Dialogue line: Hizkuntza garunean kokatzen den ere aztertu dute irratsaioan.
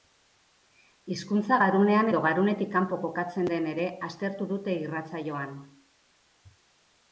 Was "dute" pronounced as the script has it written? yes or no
yes